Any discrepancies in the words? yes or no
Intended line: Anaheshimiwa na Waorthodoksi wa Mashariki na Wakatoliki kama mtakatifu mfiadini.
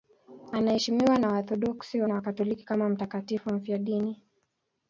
yes